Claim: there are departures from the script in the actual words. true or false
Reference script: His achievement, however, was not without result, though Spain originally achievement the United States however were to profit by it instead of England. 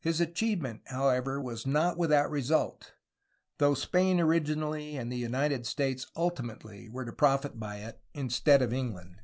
true